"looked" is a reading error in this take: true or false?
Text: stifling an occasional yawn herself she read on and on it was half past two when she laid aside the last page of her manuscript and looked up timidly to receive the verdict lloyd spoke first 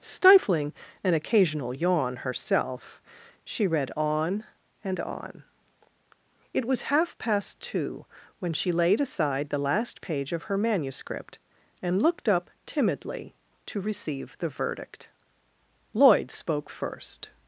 false